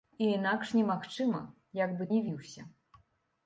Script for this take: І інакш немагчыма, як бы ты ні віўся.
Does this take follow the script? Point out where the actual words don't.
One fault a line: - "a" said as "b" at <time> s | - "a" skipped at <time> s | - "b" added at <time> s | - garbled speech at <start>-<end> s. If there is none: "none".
- "ты" skipped at 2.1 s